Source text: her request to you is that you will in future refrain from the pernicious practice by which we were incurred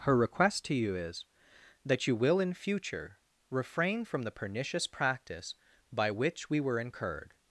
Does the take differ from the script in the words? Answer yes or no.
no